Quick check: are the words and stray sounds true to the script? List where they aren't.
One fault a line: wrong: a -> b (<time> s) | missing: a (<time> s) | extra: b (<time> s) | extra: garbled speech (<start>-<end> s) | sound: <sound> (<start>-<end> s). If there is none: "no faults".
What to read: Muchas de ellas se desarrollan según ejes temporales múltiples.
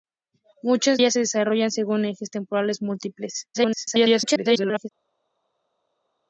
missing: de (1.0 s)
extra: garbled speech (3.5-4.9 s)